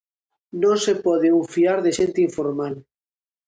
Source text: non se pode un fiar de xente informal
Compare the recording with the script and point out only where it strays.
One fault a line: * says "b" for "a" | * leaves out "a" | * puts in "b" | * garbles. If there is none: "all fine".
all fine